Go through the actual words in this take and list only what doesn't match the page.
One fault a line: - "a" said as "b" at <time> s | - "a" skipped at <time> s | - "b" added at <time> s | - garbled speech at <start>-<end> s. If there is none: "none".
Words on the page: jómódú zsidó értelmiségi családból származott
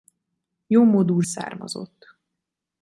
- "zsidó értelmiségi családból" skipped at 1.2 s